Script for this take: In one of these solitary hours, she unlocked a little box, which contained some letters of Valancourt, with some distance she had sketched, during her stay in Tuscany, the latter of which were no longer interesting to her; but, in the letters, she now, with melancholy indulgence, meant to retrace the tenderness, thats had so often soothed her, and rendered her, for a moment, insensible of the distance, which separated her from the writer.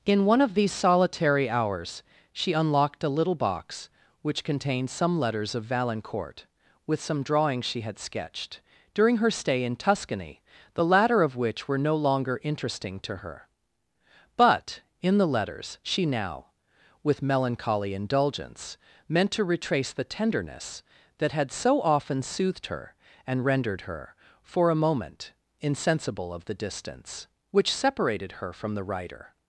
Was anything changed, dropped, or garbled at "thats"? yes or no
yes